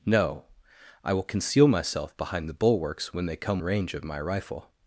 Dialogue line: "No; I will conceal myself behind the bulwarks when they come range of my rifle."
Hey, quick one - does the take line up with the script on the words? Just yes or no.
yes